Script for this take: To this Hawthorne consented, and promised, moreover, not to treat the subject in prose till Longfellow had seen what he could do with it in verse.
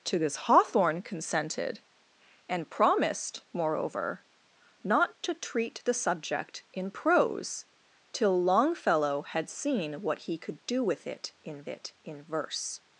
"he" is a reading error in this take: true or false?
false